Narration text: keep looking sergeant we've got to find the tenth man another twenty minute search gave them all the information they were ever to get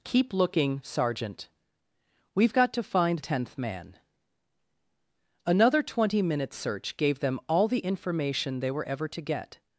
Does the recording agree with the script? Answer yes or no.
no